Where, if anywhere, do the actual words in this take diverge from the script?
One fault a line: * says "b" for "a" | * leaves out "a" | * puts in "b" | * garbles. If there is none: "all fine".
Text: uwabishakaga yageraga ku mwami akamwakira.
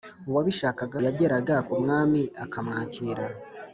all fine